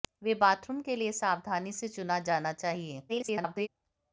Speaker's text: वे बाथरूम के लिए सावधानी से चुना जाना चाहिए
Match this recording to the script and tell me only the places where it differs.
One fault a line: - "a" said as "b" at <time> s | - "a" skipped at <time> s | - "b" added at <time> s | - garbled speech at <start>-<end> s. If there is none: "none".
- garbled speech at 3.1-3.7 s